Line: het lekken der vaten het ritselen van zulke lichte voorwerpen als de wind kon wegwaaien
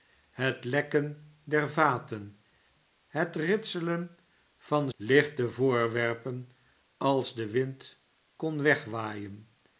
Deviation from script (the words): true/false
true